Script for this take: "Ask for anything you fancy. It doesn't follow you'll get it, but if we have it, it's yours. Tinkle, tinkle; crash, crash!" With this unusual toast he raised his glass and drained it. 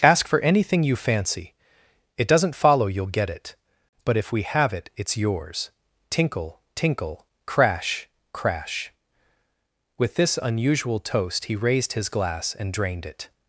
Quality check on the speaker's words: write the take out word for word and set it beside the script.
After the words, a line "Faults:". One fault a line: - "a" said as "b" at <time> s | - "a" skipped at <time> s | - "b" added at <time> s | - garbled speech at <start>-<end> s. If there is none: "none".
"Ask for anything you fancy. It doesn't follow you'll get it, but if we have it, it's yours. Tinkle, tinkle; crash, crash!" With this unusual toast he raised his glass and drained it.
Faults:
none